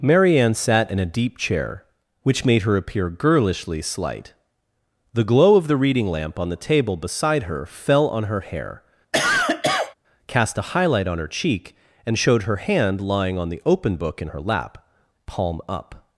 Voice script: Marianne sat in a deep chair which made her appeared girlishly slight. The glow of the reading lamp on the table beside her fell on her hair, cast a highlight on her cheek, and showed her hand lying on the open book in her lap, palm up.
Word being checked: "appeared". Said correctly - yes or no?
no